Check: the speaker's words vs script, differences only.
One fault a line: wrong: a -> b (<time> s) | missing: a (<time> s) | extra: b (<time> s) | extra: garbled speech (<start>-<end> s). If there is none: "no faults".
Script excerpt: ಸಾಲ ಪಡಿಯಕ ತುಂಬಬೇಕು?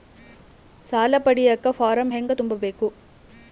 extra: ಫಾರಂ ಹೆಂಗ (1.7 s)